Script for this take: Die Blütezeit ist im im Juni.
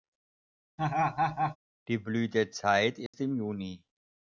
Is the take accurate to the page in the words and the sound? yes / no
no